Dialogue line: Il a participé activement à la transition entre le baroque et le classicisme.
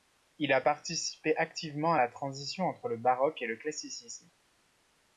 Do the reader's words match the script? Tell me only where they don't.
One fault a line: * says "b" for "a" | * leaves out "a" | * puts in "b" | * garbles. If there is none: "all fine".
all fine